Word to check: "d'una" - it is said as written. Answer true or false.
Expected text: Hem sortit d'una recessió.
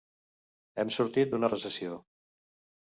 true